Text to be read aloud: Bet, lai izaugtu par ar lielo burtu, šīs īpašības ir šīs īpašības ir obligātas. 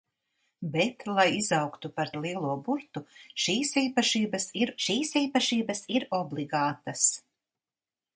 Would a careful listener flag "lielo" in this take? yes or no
no